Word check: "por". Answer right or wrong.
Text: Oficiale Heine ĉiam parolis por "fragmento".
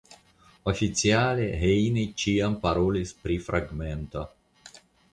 wrong